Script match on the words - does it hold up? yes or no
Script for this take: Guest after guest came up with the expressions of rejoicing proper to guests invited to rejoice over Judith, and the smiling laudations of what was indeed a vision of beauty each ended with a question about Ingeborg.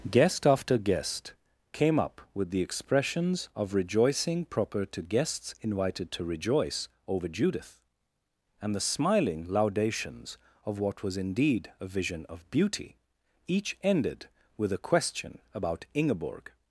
yes